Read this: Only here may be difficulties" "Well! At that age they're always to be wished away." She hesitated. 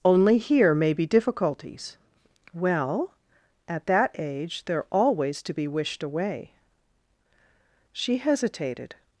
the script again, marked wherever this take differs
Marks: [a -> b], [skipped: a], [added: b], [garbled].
Only here may be difficulties" "Well! At that age they're always to be wished away." She hesitated.